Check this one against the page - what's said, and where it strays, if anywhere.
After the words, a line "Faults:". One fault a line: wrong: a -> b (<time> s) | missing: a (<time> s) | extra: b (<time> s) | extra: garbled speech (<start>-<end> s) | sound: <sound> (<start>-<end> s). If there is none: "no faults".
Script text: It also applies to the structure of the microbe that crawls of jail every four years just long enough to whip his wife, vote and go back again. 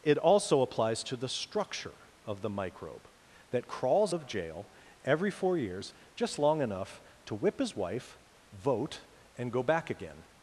It also applies to the structure of the microbe that crawls of jail every four years just long enough to whip his wife, vote and go back again.
Faults:
no faults